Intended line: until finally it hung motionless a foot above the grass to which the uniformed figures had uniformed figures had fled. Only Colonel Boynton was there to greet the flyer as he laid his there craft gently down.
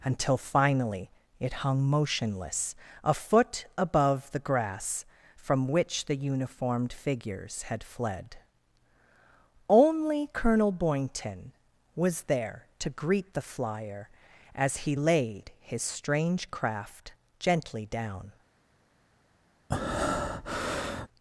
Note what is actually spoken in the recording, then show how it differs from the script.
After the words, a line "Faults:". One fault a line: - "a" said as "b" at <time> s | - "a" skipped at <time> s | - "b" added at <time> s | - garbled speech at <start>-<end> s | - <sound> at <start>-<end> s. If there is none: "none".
until finally it hung motionless a foot above the grass from which the uniformed figures had fled. Only Colonel Boynton was there to greet the flyer as he laid his strange craft gently down.
Faults:
- "to" said as "from" at 5.4 s
- "uniformed figures had" skipped at 7.8 s
- "there" said as "strange" at 15.8 s
- breath at 19.7-21.1 s